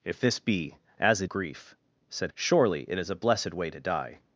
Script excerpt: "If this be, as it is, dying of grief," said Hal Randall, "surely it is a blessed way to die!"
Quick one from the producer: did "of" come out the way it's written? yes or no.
no